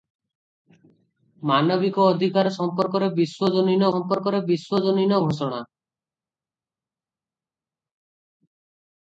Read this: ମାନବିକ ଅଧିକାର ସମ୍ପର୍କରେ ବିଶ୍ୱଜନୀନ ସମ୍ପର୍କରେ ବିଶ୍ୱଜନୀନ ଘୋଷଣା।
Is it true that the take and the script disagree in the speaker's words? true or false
false